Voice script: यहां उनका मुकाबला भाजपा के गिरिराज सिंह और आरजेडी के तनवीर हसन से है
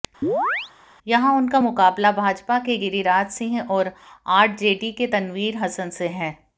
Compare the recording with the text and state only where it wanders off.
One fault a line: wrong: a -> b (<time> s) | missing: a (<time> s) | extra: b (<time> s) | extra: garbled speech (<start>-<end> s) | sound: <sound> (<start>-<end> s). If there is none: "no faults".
sound: chirp (0.2-0.7 s)